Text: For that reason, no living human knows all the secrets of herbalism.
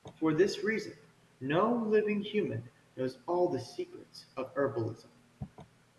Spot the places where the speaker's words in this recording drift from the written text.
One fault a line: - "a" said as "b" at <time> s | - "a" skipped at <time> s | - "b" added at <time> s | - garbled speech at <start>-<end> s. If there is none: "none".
- "that" said as "this" at 0.3 s